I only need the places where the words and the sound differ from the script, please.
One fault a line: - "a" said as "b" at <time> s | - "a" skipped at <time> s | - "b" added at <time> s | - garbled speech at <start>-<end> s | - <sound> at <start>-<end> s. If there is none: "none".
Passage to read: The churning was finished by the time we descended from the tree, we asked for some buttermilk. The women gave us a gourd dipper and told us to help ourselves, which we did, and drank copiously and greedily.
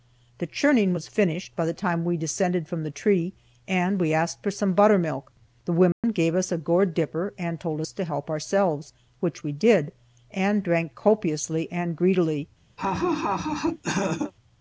- "and" added at 3.7 s
- dropout at 5.9-6.0 s
- laugh at 12.8-14.3 s